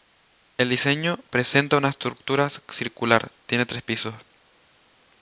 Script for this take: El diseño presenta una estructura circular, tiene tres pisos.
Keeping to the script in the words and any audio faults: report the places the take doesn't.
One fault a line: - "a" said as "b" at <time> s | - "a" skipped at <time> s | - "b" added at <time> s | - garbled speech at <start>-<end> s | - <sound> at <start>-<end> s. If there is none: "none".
none